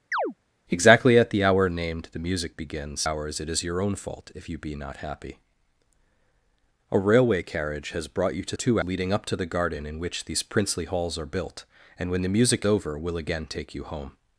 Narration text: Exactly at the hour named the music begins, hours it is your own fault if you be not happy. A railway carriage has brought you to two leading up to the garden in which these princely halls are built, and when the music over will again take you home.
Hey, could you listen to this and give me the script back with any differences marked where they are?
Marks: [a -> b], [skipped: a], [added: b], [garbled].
Exactly at the hour named the music begins, hours it is your own fault if you be not happy. A railway carriage has brought you to two leading up to the garden in which these princely halls are built, and when the music over will again take you home.